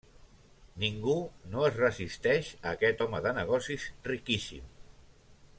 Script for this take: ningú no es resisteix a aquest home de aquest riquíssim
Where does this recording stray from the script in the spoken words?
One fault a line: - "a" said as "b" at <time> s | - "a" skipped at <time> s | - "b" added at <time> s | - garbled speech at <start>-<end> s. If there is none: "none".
- "aquest" said as "negocis" at 3.4 s